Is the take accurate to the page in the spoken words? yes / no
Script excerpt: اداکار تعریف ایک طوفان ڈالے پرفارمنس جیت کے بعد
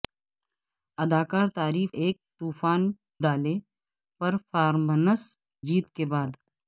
yes